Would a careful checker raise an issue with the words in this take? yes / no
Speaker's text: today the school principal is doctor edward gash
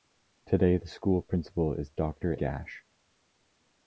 yes